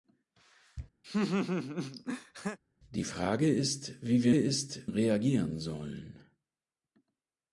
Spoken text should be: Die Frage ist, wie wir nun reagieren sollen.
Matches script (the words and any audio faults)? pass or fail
fail